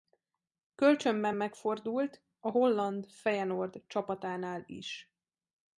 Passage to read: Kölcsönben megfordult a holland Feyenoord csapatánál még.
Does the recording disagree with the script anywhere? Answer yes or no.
yes